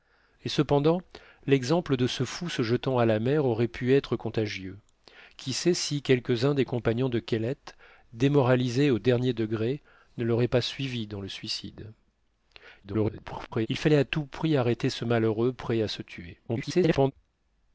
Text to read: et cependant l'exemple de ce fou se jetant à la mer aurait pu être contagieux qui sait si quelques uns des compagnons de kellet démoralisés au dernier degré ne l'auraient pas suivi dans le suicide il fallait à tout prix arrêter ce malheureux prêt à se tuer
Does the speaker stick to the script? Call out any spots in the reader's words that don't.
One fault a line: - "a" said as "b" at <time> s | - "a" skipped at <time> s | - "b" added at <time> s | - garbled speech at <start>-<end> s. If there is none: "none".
- garbled speech at 12.8-13.7 s
- garbled speech at 16.5-17.1 s